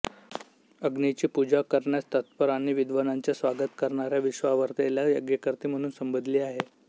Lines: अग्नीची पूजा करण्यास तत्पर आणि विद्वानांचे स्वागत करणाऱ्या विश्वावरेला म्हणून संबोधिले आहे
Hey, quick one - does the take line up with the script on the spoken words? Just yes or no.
no